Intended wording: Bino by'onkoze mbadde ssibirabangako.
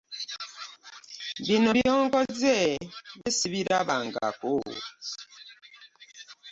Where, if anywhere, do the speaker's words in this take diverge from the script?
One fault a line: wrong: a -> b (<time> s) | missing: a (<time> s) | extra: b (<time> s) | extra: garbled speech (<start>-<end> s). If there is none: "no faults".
missing: mbadde (2.6 s)